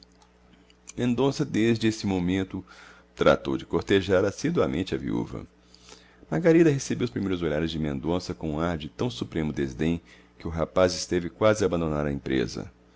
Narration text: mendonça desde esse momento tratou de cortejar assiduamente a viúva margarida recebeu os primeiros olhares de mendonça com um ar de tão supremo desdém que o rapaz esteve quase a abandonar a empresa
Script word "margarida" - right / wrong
right